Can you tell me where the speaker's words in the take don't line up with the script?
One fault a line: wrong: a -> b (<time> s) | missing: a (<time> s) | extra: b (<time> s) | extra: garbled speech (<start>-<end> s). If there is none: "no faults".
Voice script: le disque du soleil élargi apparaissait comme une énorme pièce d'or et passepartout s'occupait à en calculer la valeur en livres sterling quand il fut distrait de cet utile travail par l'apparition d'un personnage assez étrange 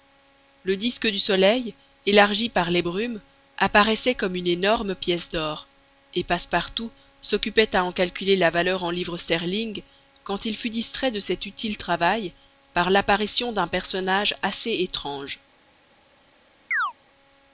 extra: par les brumes (2.5 s)